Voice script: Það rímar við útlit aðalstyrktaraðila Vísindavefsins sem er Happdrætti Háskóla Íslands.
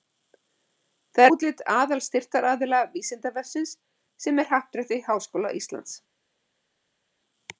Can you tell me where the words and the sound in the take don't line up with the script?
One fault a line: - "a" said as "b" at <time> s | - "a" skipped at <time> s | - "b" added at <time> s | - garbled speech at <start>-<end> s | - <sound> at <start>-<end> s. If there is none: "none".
- "rímar við" skipped at 1.3 s